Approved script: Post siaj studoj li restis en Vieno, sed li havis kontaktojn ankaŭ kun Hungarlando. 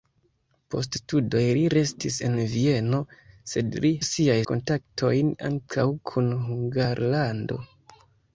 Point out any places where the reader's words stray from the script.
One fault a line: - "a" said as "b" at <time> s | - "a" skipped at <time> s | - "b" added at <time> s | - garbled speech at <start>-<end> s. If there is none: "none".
- "siaj" skipped at 0.9 s
- "havis" said as "siaj" at 4.1 s